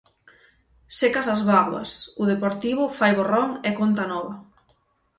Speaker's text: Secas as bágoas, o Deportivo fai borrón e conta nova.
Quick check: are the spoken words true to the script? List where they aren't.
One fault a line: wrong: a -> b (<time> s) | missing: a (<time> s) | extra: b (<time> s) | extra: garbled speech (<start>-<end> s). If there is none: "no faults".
no faults